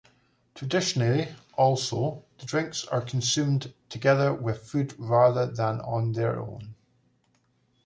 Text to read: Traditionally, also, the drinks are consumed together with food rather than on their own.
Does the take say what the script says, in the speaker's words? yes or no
yes